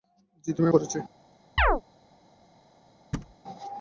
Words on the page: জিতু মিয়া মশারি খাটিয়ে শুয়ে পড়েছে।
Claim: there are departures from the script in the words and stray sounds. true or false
true